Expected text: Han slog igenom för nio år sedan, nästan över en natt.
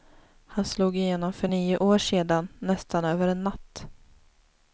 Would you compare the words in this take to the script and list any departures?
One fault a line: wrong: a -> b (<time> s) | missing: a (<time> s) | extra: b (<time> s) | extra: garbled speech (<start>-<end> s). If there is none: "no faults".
no faults